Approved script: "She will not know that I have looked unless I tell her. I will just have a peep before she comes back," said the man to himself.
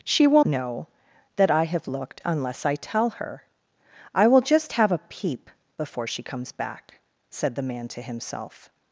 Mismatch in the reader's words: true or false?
true